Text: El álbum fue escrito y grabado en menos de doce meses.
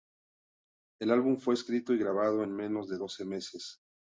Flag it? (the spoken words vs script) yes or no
no